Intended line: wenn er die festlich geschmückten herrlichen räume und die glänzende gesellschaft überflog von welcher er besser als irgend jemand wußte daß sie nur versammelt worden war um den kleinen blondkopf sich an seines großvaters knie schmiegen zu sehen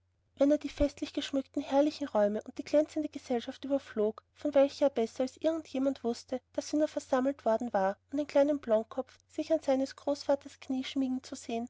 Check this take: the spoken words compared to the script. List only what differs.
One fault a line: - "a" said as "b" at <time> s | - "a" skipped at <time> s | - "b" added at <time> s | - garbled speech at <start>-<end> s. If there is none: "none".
none